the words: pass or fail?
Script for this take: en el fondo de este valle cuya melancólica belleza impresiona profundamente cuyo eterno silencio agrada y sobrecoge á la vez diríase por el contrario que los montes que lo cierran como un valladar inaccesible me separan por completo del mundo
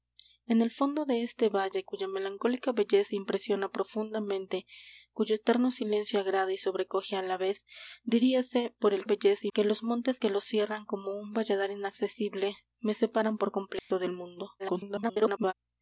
fail